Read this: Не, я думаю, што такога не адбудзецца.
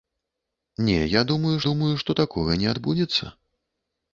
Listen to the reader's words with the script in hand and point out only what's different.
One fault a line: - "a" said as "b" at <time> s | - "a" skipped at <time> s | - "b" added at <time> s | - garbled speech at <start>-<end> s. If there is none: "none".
- "думаю" added at 1.7 s